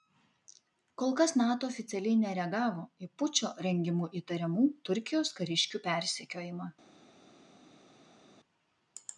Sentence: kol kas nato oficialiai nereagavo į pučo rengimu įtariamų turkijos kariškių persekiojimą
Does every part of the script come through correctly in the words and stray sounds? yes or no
yes